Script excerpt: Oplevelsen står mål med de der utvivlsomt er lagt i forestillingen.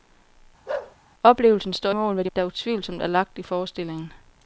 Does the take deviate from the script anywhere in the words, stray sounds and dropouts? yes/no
yes